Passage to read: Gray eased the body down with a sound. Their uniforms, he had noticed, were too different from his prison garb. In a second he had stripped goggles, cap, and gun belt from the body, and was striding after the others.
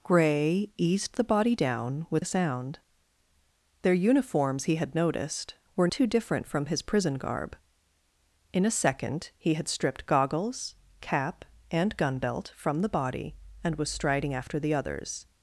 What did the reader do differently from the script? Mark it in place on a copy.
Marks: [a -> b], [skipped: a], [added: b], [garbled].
Gray eased the body down with a sound. Their uniforms, he had noticed, were too different from his prison garb. In a second he had stripped goggles, cap, and gun belt from the body, and was striding after the others.